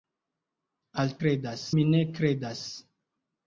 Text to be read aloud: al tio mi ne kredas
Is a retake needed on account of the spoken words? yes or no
yes